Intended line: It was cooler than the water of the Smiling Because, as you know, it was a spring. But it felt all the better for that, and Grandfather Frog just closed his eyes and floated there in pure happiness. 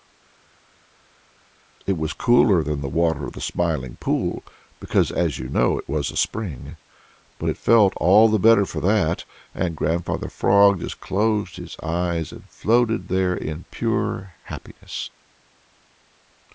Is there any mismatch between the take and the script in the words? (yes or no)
yes